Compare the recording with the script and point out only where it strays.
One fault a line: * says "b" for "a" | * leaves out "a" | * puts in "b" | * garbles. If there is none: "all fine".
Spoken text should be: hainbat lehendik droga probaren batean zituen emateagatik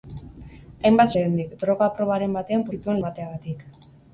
all fine